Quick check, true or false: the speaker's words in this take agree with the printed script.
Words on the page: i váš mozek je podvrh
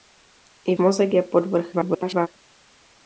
false